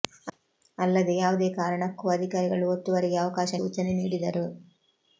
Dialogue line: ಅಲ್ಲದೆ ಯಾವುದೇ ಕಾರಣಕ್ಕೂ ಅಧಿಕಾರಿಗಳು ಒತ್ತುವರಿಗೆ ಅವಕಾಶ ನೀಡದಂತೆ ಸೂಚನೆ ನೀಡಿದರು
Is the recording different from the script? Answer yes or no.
yes